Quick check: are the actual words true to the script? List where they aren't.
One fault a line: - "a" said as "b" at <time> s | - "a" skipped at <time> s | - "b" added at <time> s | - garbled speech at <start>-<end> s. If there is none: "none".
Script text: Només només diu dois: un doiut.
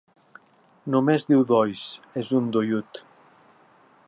- "només" skipped at 1.3 s
- "és" added at 2.2 s